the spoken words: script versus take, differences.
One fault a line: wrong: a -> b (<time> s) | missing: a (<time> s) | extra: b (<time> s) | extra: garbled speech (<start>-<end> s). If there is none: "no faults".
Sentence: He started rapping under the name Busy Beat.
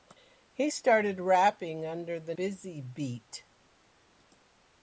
missing: name (2.3 s)